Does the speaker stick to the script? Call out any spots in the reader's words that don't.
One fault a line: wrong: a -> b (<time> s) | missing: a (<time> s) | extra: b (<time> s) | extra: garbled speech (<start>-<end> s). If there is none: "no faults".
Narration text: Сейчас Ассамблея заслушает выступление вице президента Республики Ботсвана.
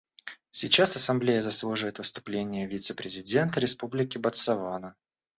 no faults